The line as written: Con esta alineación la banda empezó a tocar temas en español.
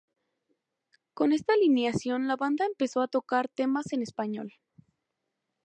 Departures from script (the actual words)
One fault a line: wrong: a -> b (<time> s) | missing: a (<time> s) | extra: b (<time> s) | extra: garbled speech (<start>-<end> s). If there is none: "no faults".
no faults